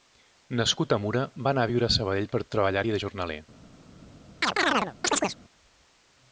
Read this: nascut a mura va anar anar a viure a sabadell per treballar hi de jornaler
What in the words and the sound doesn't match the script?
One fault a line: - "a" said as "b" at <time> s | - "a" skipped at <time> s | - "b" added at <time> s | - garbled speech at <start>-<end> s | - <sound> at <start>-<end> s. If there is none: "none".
- "anar" skipped at 1.7 s
- chirp at 4.4-5.4 s